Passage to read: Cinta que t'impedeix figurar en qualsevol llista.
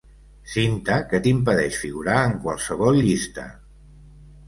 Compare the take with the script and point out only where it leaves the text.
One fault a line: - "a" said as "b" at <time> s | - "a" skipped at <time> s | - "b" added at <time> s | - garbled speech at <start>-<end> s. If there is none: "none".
none